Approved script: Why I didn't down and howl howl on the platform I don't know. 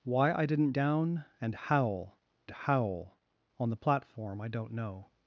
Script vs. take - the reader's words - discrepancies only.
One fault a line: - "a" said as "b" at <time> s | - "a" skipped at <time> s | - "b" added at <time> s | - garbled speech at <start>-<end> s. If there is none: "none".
none